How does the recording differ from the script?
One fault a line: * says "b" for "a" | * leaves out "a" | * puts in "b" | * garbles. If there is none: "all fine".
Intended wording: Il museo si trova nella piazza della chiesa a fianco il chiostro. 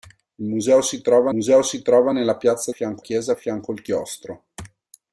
* puts in "museo si trova"
* says "fianco" for "della"